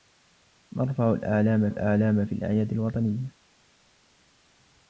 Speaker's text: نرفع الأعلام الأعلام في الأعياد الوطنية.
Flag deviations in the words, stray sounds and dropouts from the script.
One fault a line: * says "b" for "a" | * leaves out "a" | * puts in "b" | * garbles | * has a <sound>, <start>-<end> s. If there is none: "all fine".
all fine